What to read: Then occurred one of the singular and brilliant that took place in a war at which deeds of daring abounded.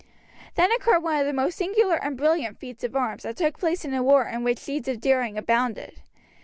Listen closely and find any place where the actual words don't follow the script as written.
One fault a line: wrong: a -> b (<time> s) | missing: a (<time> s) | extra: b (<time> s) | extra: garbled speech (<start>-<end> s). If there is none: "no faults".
extra: most (1.3 s)
extra: feats of arms (2.6 s)
wrong: at -> in (4.3 s)